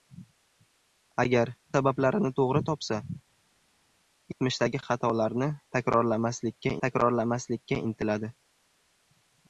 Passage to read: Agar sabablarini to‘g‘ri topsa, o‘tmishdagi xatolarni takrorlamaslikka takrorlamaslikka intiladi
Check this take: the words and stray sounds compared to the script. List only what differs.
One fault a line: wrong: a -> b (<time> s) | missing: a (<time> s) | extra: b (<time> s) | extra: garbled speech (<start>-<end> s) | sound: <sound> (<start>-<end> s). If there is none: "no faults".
no faults